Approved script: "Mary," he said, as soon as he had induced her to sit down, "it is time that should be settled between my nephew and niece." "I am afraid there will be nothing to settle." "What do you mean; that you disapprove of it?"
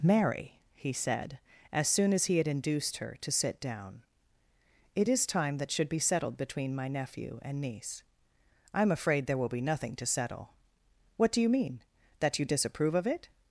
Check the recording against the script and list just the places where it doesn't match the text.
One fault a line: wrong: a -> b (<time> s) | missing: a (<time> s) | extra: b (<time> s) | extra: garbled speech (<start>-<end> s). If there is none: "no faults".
no faults